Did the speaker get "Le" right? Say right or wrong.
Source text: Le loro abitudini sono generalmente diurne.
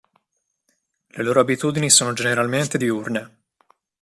right